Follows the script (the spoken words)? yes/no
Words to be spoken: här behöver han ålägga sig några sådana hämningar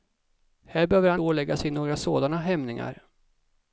yes